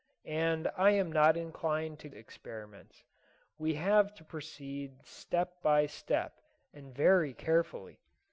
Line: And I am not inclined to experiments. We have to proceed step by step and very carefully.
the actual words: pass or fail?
pass